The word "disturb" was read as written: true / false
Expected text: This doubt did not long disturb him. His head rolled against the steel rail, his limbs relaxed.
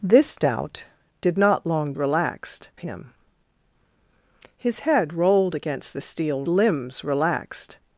false